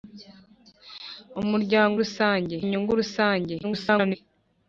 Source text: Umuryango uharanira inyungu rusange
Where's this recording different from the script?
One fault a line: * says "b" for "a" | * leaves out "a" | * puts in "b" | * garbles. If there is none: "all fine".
* says "rusange" for "uharanira"
* garbles